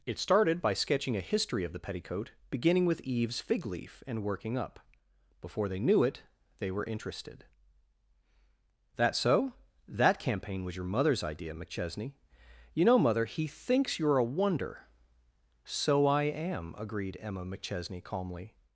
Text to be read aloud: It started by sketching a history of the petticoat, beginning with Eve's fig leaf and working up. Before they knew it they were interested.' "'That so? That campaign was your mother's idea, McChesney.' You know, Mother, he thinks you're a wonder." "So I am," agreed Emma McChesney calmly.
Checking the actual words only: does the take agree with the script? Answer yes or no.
yes